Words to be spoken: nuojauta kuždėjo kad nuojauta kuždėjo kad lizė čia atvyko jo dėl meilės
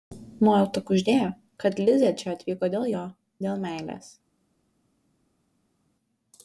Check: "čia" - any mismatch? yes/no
no